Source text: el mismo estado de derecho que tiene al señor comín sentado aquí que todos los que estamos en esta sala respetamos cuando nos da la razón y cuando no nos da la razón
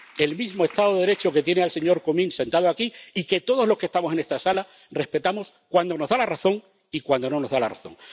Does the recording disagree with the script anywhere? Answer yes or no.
yes